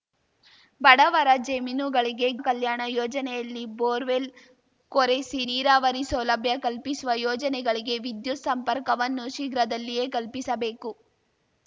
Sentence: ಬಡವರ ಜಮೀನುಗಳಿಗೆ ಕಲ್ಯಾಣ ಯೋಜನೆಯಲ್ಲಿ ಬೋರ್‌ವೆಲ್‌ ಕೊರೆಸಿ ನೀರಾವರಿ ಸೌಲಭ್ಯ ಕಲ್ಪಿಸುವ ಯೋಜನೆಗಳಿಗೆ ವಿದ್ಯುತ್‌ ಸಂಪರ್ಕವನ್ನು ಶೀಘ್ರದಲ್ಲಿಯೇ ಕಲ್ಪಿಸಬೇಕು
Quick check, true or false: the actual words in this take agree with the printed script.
true